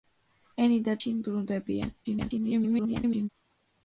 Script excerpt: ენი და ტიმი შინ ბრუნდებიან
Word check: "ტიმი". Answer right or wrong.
wrong